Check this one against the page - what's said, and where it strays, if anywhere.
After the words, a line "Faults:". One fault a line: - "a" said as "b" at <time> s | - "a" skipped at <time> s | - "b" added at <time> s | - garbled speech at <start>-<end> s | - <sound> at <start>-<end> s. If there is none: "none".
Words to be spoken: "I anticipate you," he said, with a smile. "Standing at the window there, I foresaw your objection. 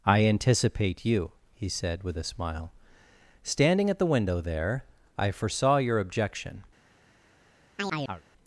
"I anticipate you," he said, with a smile. "Standing at the window there, I foresaw your objection.
Faults:
- chirp at 7.8-8.2 s